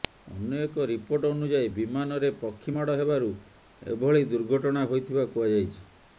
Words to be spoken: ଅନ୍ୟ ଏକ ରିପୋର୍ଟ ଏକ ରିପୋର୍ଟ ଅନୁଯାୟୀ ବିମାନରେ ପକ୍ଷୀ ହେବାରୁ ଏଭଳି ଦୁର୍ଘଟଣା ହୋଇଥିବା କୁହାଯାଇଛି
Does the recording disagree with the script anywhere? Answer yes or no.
yes